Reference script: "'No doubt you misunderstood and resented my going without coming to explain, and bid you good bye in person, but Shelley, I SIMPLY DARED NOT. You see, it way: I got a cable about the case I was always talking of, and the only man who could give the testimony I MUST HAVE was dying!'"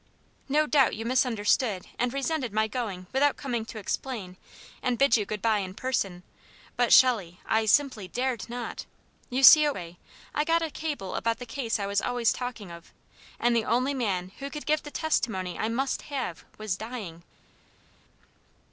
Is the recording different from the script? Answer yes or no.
no